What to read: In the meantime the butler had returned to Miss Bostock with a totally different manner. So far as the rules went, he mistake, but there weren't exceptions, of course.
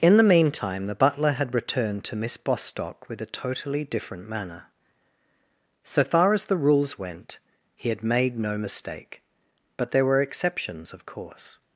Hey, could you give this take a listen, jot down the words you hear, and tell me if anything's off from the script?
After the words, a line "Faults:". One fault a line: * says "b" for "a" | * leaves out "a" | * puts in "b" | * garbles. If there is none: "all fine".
In the meantime the butler had returned to Miss Bostock with a totally different manner. So far as the rules went, he had made no mistake, but there were exceptions, of course.
Faults:
* puts in "had made no"
* says "were" for "weren't"